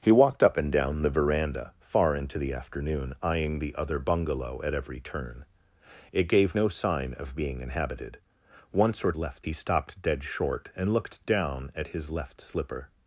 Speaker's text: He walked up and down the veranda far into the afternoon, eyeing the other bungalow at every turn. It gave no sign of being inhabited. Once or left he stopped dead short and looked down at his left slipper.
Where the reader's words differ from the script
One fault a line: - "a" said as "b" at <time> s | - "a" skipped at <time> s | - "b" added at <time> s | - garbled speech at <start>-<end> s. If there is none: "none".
none